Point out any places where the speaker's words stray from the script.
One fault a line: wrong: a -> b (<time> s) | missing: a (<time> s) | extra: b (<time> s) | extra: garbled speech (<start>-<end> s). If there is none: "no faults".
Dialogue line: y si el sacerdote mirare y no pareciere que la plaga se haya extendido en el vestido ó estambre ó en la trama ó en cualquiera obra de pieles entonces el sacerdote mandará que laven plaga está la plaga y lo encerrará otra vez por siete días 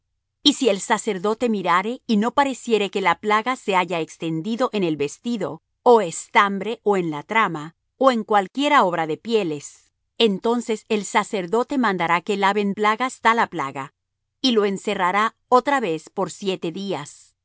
no faults